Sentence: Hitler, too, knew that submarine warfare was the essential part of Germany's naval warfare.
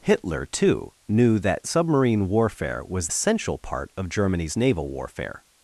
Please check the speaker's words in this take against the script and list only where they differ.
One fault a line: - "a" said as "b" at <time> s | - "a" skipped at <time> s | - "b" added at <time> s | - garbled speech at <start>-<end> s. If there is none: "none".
- "the" skipped at 3.1 s